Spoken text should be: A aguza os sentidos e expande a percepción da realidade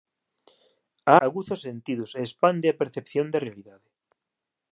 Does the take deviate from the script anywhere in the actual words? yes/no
no